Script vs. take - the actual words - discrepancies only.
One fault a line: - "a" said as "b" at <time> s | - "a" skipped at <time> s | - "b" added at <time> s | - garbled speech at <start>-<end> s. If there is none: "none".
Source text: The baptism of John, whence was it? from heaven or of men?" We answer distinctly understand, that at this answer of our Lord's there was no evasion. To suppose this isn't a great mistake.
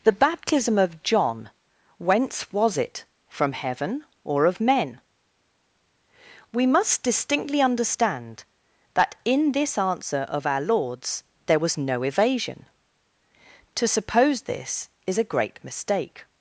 - "answer" said as "must" at 6.7 s
- "at" said as "in" at 9.2 s
- "isn't" said as "is" at 15.1 s